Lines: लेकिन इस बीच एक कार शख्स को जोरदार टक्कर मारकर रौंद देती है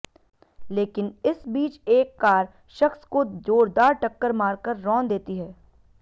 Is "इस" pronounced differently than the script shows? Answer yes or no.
no